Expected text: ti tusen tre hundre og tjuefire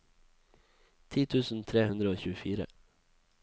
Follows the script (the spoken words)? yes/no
yes